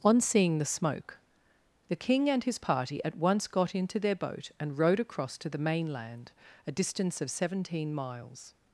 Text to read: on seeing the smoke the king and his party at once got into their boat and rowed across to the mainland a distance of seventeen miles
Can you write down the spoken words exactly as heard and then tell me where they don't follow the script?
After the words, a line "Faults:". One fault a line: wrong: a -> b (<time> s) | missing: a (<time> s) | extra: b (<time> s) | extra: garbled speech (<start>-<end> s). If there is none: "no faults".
on seeing the smoke the king and his party at once got into their boat and rowed across to the mainland a distance of seventeen miles
Faults:
no faults